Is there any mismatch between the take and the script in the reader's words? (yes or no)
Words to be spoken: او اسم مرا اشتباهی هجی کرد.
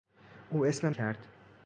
yes